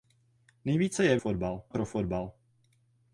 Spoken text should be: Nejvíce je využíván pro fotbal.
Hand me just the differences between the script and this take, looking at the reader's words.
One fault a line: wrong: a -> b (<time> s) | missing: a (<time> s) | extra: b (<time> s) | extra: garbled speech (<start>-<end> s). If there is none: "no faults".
wrong: využíván -> fotbal (1.2 s)